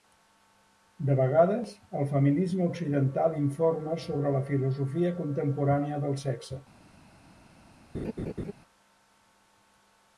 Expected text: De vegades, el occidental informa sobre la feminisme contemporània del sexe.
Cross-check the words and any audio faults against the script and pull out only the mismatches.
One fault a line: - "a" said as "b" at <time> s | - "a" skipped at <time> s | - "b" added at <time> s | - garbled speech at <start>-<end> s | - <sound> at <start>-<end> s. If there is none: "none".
- "feminisme" added at 2.1 s
- "feminisme" said as "filosofia" at 4.5 s
- laugh at 7.9-8.5 s